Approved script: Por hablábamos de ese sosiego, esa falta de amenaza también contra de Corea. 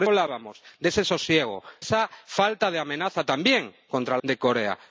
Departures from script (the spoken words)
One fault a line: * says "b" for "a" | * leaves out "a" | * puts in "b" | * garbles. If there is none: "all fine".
all fine